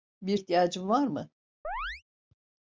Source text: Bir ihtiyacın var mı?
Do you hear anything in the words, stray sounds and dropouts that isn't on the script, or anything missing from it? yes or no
yes